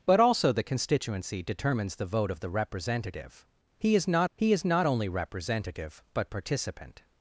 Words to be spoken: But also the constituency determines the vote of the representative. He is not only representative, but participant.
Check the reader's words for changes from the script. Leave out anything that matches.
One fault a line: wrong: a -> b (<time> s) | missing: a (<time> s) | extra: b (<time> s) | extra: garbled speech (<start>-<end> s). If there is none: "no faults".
extra: he is not (4.3 s)